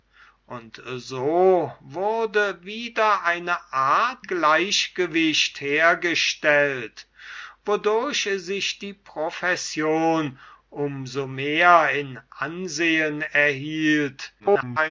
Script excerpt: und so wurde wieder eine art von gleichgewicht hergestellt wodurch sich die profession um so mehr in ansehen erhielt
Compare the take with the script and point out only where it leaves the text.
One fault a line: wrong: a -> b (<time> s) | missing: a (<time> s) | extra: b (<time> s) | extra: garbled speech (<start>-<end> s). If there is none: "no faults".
missing: von (4.2 s)
extra: garbled speech (14.4-14.9 s)